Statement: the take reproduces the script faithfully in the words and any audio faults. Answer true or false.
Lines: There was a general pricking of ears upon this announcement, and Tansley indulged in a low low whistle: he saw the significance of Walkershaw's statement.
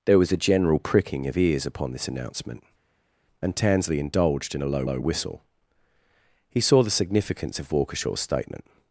true